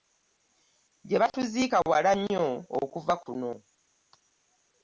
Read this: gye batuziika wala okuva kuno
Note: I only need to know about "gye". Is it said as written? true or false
true